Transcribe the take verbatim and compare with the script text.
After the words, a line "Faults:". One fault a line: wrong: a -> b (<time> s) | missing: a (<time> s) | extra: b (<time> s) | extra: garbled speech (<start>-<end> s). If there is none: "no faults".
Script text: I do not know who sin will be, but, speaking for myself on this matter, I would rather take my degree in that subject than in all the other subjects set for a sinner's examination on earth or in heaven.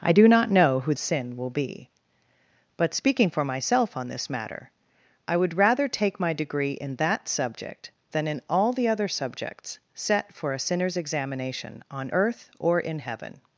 I do not know who sin will be, but, speaking for myself on this matter, I would rather take my degree in that subject than in all the other subjects set for a sinner's examination on earth or in heaven.
Faults:
no faults